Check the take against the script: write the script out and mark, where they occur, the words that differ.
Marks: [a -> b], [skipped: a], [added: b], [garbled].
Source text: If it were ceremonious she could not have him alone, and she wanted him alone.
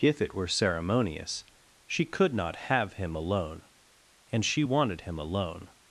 If it were ceremonious she could not have him alone, and she wanted him alone.